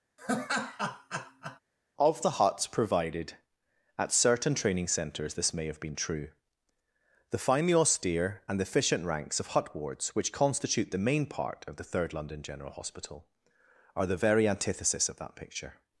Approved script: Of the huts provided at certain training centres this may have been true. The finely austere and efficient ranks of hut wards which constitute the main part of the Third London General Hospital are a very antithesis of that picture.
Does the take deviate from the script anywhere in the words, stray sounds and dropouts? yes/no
yes